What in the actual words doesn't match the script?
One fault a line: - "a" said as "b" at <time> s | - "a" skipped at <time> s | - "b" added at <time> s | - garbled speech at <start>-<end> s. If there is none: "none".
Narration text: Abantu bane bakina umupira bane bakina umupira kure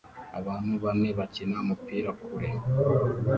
- "bane bakina umupira" skipped at 2.1 s